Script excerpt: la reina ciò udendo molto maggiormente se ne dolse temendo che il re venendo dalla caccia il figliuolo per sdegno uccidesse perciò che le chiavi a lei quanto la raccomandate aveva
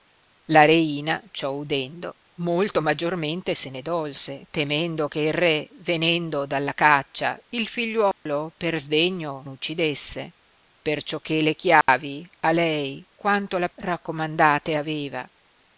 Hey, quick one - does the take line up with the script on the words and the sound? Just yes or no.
no